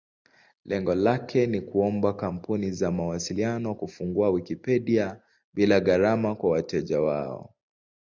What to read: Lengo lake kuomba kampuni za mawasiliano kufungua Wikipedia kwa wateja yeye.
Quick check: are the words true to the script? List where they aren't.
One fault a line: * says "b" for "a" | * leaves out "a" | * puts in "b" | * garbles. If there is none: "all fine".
* puts in "ni"
* puts in "bila gharama"
* says "wao" for "yeye"